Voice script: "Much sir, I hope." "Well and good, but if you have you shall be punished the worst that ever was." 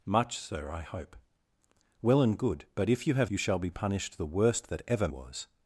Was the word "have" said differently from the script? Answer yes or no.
no